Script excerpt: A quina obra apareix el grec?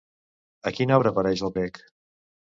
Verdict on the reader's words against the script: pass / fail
pass